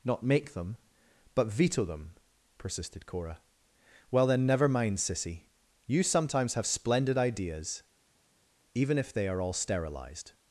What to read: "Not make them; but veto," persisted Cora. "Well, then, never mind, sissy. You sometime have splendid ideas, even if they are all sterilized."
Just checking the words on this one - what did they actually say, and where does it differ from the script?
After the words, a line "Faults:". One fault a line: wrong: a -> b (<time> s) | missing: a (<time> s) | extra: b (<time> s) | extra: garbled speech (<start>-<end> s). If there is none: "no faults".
"Not make them; but veto them," persisted Cora. "Well, then, never mind, sissy. You sometimes have splendid ideas, even if they are all sterilized."
Faults:
extra: them (1.9 s)
wrong: sometime -> sometimes (6.0 s)